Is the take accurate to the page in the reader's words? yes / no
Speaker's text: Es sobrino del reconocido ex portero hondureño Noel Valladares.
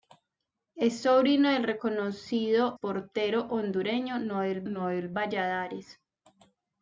no